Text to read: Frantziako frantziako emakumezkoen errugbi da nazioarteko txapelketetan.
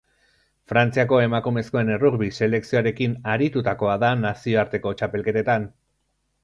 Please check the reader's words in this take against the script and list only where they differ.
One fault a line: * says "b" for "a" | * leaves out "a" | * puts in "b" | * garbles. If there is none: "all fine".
* leaves out "frantziako"
* puts in "selekzioarekin aritutakoa"